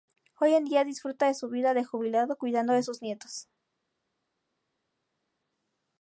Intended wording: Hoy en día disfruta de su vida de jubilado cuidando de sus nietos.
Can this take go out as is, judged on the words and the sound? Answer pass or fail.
pass